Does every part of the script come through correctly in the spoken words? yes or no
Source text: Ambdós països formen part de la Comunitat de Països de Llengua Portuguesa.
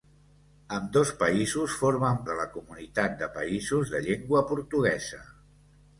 no